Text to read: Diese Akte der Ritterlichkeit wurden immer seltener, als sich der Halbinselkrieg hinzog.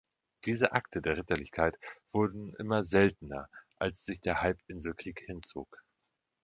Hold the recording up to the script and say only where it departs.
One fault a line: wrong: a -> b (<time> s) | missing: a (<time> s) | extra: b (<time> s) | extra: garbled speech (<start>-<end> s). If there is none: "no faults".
no faults